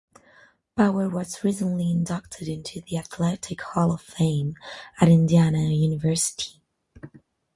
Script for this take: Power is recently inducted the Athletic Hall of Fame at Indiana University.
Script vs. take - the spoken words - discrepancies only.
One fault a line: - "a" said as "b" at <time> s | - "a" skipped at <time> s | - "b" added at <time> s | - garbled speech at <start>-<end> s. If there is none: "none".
- "is" said as "was" at 1.1 s
- "into" added at 2.5 s